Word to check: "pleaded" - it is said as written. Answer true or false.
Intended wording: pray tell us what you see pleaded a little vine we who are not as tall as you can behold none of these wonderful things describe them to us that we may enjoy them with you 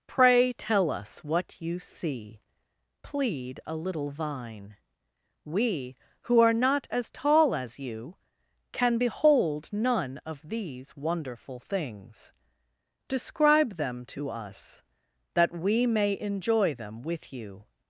false